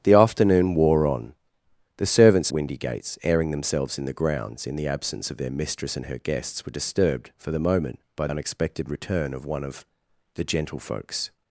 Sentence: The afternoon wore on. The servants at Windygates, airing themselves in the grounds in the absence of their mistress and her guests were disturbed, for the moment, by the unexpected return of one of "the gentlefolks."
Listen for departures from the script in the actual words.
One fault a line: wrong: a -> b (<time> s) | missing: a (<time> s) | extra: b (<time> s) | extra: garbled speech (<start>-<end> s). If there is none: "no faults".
missing: at (2.5 s)
missing: the (8.3 s)